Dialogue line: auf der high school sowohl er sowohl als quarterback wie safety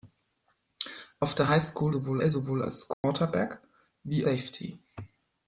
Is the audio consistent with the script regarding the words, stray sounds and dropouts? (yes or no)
no